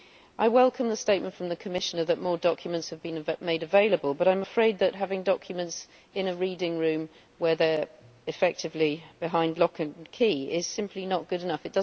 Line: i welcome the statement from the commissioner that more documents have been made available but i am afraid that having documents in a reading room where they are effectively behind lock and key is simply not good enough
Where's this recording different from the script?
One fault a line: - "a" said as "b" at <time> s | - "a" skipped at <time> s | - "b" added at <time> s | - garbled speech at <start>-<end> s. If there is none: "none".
none